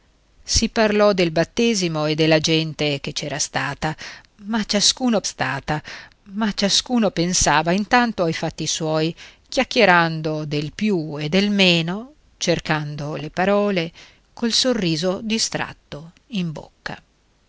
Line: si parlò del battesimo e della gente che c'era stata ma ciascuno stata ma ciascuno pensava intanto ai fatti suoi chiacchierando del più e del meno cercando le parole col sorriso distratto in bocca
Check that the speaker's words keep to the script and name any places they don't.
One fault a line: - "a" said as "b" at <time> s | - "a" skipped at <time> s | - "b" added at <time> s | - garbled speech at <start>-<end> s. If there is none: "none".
none